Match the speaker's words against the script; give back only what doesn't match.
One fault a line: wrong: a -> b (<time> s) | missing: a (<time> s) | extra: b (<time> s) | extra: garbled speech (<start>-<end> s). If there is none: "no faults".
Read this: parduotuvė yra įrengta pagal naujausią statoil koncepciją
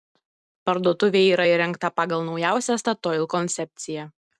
no faults